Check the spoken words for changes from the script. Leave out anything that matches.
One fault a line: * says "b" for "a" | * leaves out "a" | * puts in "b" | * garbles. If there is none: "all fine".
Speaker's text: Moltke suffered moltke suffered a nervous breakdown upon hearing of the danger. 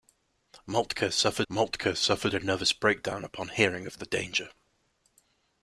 all fine